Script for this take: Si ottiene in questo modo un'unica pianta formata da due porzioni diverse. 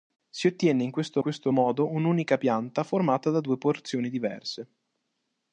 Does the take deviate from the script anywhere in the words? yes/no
yes